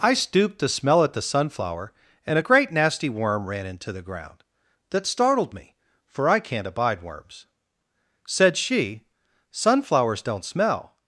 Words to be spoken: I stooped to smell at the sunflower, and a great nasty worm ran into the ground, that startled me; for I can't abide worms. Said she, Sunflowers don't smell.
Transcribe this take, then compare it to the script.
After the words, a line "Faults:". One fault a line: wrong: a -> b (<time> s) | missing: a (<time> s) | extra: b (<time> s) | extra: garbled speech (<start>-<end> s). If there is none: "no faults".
I stooped to smell at the sunflower, and a great nasty worm ran into the ground, that startled me; for I can't abide worms. Said she, Sunflowers don't smell.
Faults:
no faults